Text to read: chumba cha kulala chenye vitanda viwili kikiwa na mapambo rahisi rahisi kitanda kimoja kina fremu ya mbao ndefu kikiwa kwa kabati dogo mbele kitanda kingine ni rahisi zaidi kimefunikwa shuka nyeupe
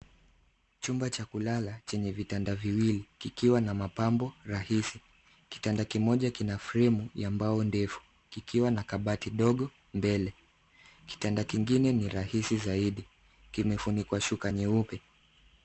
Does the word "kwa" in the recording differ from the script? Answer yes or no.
yes